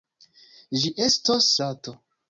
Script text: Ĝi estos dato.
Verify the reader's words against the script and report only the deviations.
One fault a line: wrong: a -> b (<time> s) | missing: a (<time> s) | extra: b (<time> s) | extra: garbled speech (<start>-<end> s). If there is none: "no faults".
no faults